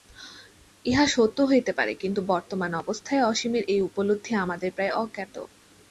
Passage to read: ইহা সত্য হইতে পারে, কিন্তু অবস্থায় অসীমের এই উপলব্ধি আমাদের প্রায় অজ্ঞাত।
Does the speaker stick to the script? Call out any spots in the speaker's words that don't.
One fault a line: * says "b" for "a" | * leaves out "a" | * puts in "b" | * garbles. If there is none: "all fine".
* puts in "বর্তমান"